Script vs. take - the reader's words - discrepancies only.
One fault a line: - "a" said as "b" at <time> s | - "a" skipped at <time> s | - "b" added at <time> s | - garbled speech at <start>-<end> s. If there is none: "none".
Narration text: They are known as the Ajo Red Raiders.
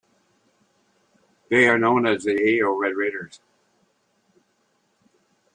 none